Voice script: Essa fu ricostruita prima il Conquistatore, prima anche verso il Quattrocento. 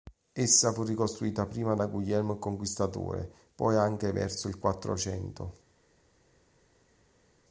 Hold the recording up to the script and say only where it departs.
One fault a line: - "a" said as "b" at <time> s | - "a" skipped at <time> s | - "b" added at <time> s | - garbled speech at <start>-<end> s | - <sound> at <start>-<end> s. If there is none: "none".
- "da Guglielmo" added at 1.7 s
- "prima" said as "poi" at 3.5 s